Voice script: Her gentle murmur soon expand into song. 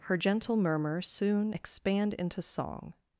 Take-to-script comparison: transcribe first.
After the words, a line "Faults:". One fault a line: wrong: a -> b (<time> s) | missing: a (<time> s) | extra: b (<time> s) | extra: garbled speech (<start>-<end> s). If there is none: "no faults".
Her gentle murmur soon expand into song.
Faults:
no faults